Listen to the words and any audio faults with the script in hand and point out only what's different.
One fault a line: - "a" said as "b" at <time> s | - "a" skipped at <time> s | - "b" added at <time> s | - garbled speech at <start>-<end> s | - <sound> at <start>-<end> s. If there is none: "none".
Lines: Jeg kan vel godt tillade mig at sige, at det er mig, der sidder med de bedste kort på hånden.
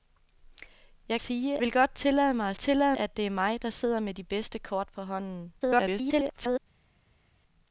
- "kan" said as "sige" at 1.2 s
- "sige" said as "tillade" at 2.6 s
- garbled speech at 5.6-6.6 s